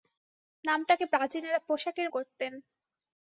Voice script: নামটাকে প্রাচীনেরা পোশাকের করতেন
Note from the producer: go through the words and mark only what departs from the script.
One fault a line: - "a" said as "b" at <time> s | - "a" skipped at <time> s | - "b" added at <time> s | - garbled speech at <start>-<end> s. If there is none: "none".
none